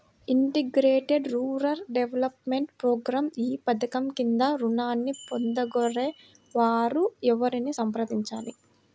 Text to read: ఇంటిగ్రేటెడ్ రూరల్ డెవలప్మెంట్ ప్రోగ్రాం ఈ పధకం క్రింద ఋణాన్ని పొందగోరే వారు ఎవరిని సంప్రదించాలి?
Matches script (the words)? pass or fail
pass